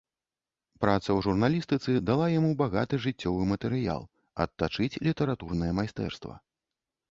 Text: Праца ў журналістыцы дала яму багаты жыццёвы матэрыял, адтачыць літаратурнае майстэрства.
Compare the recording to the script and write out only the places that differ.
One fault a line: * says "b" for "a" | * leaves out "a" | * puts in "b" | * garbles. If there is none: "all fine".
all fine